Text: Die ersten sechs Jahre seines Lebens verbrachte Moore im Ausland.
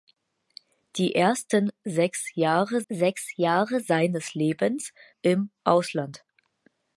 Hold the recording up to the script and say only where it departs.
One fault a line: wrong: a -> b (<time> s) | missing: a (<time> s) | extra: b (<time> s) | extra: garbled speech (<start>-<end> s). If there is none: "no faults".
extra: sechs Jahre (2.9 s)
missing: verbrachte Moore (4.9 s)